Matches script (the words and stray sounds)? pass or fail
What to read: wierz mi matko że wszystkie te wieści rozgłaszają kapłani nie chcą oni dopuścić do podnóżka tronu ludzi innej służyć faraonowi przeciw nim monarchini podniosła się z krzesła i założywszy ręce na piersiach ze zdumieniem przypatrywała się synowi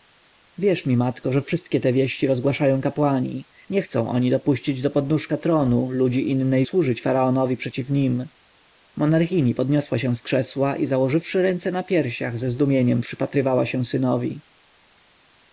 pass